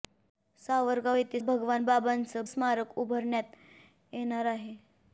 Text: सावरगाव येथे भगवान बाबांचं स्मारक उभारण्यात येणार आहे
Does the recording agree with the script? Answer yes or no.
yes